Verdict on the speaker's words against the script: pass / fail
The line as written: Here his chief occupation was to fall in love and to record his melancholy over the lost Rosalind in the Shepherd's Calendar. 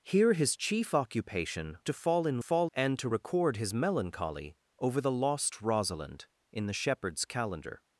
fail